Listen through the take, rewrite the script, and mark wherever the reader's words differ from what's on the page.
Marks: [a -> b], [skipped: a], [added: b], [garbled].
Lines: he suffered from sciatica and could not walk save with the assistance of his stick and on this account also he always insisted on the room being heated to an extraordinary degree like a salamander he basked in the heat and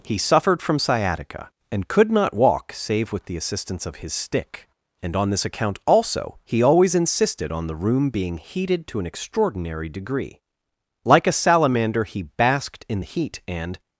he suffered from sciatica and could not walk save with the assistance of his stick and on this account also he always insisted on the room being heated to an extraordinary degree like a salamander he basked in the heat and